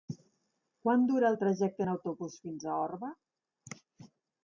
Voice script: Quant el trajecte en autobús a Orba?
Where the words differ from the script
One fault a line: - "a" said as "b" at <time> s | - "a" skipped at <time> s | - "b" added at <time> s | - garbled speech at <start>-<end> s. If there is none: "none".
- "dura" added at 1.1 s
- "fins" added at 2.5 s